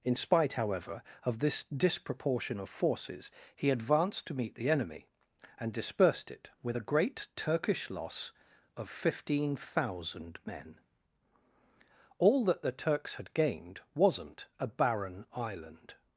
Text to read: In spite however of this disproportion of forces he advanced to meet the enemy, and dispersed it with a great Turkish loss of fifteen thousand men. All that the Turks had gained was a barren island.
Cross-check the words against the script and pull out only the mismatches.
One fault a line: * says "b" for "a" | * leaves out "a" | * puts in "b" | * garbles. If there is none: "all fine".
* says "wasn't" for "was"